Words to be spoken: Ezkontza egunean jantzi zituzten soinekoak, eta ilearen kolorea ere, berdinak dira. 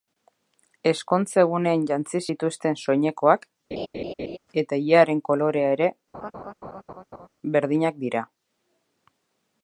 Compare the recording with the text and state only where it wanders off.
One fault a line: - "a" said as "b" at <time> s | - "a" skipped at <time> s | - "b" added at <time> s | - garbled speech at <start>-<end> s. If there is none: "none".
none